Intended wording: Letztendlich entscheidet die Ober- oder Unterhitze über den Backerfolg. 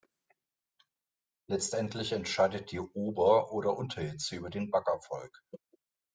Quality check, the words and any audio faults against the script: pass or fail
pass